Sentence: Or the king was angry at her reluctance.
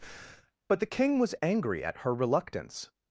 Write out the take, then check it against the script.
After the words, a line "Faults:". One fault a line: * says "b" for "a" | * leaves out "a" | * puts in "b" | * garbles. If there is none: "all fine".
But the king was angry at her reluctance.
Faults:
* says "But" for "Or"